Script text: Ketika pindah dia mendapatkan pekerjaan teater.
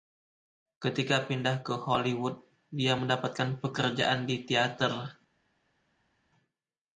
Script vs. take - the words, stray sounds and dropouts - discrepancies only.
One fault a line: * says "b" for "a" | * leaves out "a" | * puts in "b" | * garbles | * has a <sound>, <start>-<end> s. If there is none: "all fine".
* puts in "ke Hollywood"
* puts in "di"